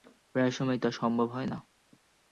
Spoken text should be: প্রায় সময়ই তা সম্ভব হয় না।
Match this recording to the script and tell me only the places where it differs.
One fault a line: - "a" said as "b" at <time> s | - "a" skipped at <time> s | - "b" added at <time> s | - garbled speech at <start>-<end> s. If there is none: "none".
none